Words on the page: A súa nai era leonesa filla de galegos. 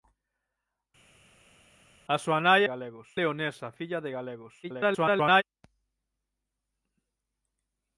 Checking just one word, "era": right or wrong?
wrong